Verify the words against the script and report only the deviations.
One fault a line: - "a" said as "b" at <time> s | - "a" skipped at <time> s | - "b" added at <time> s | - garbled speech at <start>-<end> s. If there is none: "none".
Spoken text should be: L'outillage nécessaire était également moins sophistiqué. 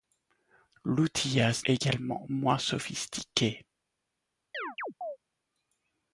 - "nécessaire était" skipped at 1.7 s